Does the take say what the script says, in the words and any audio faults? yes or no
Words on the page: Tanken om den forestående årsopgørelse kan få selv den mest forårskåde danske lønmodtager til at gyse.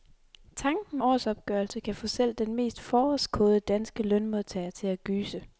no